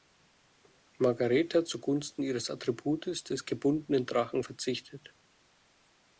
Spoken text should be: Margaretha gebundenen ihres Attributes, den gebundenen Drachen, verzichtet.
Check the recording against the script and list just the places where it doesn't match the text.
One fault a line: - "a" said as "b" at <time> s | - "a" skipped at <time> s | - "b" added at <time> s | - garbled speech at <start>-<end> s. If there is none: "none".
- "gebundenen" said as "zugunsten" at 1.6 s
- "den" said as "des" at 3.2 s